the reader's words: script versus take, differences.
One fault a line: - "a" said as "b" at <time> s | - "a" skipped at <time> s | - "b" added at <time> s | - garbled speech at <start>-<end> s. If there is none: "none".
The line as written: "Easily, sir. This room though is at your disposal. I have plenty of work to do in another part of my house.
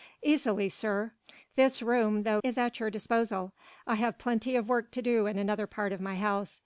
none